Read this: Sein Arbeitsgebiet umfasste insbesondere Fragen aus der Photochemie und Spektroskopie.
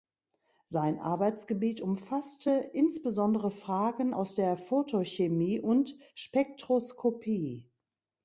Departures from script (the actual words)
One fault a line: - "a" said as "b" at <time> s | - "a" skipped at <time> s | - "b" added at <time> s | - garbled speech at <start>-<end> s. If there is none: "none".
none